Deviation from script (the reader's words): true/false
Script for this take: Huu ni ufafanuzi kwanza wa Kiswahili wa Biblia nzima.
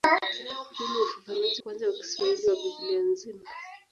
false